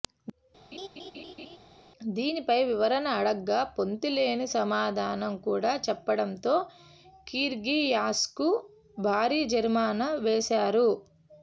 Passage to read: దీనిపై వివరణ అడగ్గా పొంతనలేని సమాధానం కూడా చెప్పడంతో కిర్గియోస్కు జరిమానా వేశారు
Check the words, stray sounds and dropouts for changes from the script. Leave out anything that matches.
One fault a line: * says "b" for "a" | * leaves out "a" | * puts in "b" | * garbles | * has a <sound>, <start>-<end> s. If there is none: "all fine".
* has a laugh, 0.7-1.6 s
* puts in "భారీ"